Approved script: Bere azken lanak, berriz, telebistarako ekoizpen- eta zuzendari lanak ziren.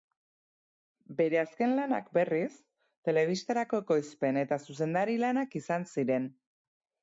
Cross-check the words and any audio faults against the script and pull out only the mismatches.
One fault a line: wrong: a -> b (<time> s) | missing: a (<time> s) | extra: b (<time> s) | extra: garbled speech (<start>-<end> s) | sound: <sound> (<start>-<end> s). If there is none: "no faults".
extra: izan (5.6 s)